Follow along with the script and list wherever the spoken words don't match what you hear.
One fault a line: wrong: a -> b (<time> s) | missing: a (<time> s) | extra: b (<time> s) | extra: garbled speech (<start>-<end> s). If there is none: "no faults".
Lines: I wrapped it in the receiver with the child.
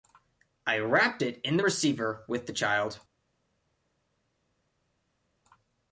no faults